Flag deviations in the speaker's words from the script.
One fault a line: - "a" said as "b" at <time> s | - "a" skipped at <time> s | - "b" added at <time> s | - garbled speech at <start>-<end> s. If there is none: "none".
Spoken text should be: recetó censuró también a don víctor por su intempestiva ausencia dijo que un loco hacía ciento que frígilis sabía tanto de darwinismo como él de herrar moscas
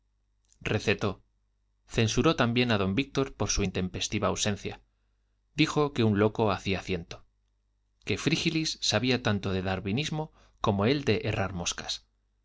none